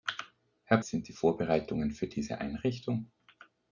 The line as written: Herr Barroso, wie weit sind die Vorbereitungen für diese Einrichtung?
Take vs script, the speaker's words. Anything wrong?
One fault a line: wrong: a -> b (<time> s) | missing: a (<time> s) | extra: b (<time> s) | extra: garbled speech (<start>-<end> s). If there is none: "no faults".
missing: Barroso wie weit (0.8 s)